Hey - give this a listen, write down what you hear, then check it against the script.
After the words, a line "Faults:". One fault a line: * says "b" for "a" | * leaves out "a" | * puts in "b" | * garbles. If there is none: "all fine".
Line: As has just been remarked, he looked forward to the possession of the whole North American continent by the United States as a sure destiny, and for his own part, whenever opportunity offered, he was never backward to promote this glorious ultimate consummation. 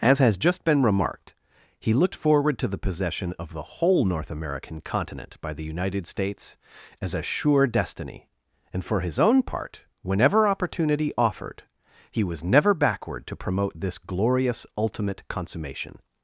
As has just been remarked, he looked forward to the possession of the whole North American continent by the United States as a sure destiny, and for his own part, whenever opportunity offered, he was never backward to promote this glorious ultimate consummation.
Faults:
all fine